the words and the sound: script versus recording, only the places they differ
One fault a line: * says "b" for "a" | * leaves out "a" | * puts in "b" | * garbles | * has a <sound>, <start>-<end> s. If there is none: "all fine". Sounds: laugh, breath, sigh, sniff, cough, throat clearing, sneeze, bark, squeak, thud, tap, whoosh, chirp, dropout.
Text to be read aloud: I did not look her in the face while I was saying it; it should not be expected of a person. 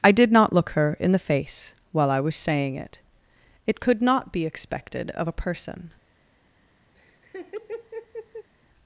* says "could" for "should"
* has a laugh, 6.9-8.5 s